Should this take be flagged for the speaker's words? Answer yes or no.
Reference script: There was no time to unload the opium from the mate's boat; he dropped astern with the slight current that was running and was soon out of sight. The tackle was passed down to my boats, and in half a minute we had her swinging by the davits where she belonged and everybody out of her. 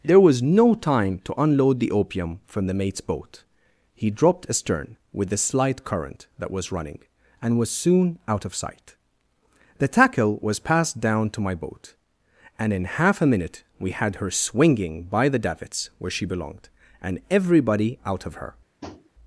yes